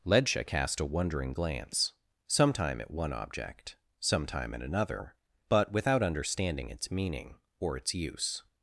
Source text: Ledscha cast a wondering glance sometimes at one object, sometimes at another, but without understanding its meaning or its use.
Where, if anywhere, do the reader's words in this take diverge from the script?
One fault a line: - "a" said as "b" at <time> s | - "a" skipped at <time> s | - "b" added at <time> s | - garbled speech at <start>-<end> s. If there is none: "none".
- "sometimes" said as "sometime" at 2.3 s
- "sometimes" said as "sometime" at 4.0 s